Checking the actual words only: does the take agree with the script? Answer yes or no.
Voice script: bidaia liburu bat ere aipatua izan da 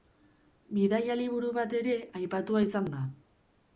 yes